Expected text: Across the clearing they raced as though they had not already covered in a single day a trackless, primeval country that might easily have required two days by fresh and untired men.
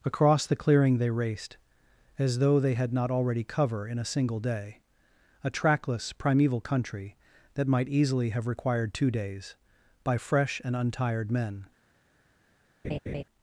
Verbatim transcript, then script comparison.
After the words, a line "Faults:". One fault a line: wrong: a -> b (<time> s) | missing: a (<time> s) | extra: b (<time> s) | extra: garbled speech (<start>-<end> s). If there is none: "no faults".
Across the clearing they raced as though they had not already cover in a single day a trackless, primeval country that might easily have required two days by fresh and untired men.
Faults:
wrong: covered -> cover (3.4 s)